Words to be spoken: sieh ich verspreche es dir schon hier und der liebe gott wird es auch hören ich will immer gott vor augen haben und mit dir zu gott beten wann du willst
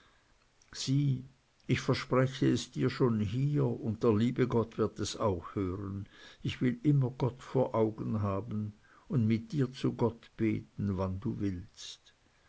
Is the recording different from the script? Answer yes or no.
no